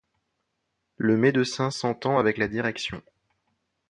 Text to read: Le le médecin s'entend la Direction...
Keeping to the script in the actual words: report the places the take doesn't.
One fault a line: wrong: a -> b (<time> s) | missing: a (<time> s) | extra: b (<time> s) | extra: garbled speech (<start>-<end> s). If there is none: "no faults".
missing: le (1.1 s)
extra: avec (2.2 s)